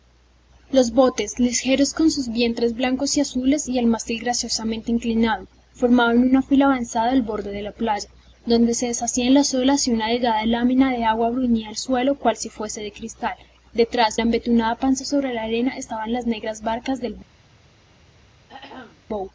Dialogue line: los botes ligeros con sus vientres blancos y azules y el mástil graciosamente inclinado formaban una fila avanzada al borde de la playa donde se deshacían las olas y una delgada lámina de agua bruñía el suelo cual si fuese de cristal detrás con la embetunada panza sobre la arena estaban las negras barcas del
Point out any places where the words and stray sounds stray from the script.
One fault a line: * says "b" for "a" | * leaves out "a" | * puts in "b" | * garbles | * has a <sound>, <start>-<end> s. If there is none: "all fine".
* leaves out "con"
* has a throat clearing, 18.5-19.1 s